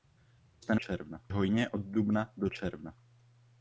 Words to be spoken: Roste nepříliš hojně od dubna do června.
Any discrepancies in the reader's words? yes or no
yes